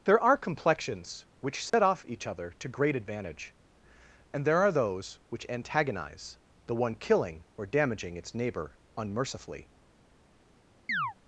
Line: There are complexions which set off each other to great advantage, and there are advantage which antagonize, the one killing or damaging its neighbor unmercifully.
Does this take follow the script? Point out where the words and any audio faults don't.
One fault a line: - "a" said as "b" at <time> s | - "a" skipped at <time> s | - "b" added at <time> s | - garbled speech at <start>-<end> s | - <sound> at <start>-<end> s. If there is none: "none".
- dropout at 1.7-1.7 s
- "advantage" said as "those" at 4.7 s
- chirp at 10.9-11.1 s